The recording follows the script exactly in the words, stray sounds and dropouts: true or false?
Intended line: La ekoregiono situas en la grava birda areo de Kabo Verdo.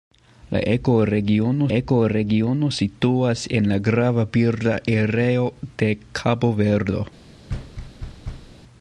false